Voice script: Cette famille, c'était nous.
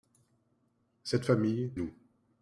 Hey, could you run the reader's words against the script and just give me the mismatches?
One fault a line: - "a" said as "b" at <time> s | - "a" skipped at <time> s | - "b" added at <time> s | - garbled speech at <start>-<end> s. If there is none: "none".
- "c'était" skipped at 1.7 s